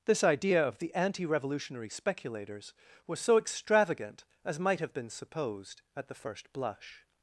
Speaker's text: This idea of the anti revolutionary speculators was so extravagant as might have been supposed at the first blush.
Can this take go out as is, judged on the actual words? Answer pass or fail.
pass